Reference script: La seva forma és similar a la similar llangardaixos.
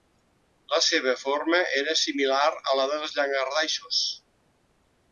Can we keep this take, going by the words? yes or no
no